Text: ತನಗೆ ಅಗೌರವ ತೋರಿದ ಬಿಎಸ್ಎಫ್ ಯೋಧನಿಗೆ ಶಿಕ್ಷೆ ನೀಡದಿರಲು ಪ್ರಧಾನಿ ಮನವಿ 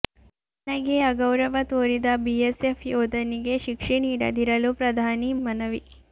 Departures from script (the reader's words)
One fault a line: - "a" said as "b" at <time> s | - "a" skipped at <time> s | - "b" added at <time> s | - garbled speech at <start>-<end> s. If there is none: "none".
none